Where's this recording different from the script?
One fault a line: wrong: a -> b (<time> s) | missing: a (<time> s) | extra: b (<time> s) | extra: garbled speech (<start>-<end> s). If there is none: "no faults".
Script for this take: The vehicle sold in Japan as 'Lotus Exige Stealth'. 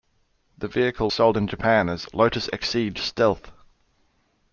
no faults